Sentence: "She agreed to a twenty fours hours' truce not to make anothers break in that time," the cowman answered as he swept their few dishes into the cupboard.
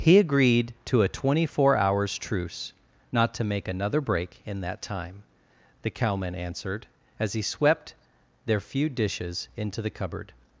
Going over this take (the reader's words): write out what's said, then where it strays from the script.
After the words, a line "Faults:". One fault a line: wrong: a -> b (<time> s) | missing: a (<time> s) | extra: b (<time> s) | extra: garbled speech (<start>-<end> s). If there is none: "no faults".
"He agreed to a twenty four hours' truce not to make another break in that time," the cowman answered as he swept their few dishes into the cupboard.
Faults:
wrong: She -> He (0.0 s)
wrong: fours -> four (1.4 s)
wrong: anothers -> another (3.7 s)